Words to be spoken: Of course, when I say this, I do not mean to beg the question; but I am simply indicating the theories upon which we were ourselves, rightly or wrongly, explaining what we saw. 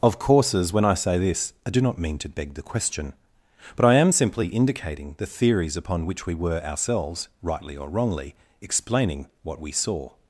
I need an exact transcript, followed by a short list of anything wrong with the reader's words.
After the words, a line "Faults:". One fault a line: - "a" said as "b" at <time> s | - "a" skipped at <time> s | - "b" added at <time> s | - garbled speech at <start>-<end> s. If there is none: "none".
Of courses, when I say this, I do not mean to beg the question; but I am simply indicating the theories upon which we were ourselves, rightly or wrongly, explaining what we saw.
Faults:
- "course" said as "courses" at 0.2 s